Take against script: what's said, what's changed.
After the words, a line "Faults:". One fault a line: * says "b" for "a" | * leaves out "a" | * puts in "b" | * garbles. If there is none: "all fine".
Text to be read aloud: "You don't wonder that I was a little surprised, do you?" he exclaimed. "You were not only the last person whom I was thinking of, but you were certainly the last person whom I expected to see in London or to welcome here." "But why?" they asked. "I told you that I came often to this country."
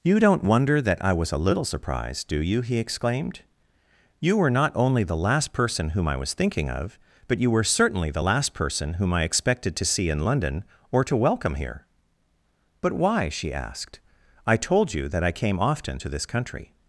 "You don't wonder that I was a little surprised, do you?" he exclaimed. "You were not only the last person whom I was thinking of, but you were certainly the last person whom I expected to see in London or to welcome here." "But why?" she asked. "I told you that I came often to this country."
Faults:
* says "she" for "they"